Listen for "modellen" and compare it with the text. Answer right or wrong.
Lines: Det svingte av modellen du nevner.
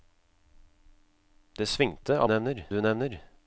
wrong